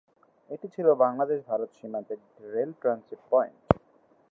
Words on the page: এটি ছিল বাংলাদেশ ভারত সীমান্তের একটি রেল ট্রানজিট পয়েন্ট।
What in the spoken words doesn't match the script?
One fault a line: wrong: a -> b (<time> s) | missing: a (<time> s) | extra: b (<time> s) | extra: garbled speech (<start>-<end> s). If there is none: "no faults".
no faults